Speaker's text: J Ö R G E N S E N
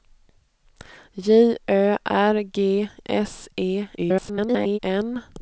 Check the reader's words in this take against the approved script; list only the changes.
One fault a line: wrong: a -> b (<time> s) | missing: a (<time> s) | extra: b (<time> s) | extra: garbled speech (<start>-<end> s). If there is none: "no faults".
missing: E N (2.9 s)
extra: garbled speech (4.0-4.8 s)